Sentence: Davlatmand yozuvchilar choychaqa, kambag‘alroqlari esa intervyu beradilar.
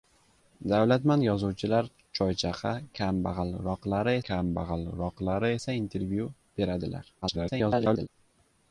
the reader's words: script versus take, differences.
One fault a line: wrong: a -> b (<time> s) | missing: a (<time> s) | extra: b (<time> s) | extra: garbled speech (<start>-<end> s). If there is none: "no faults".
extra: kambag‘alroqlari (4.3 s)
extra: garbled speech (7.2-8.1 s)